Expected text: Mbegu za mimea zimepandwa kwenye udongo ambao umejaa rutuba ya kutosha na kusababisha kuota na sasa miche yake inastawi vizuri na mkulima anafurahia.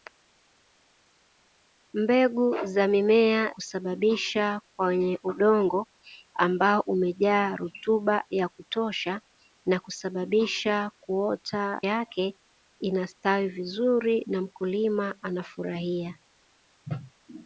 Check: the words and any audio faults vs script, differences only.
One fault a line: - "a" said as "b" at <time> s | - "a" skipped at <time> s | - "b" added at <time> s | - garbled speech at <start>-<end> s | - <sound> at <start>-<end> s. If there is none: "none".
- "zimepandwa" said as "kusababisha" at 3.5 s
- "na sasa miche" skipped at 11.8 s